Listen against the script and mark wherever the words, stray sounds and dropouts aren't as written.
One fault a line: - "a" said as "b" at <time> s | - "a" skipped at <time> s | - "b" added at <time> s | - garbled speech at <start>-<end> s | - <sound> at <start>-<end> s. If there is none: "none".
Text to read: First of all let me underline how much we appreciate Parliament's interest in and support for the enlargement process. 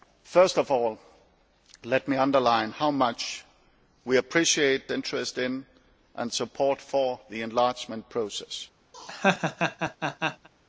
- "Parliament's" skipped at 4.9 s
- laugh at 8.9-10.5 s